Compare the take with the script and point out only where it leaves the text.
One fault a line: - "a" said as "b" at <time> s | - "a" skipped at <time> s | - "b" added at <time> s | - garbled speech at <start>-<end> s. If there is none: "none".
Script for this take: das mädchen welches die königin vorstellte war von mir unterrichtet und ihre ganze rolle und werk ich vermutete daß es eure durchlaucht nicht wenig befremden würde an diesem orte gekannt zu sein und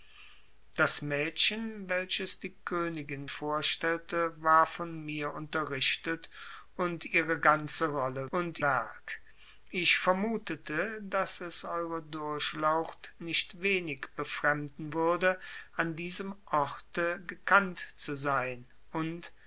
none